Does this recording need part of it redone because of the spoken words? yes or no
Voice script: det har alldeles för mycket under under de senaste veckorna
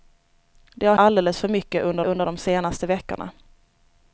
no